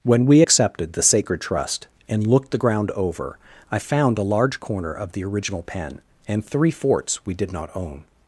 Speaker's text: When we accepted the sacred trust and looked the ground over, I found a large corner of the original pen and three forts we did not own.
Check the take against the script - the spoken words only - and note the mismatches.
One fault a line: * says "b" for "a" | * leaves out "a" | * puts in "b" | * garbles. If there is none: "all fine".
all fine